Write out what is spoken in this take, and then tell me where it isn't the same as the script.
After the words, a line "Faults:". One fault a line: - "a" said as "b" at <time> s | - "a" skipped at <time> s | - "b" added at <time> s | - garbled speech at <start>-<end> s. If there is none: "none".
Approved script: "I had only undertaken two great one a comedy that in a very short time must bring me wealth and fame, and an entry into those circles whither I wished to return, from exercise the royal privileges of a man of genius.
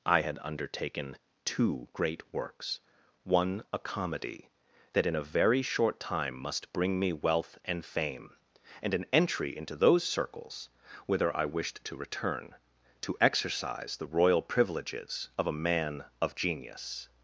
"I had undertaken two great works one a comedy that in a very short time must bring me wealth and fame, and an entry into those circles whither I wished to return, to exercise the royal privileges of a man of genius.
Faults:
- "only" skipped at 0.4 s
- "works" added at 2.3 s
- "from" said as "to" at 13.0 s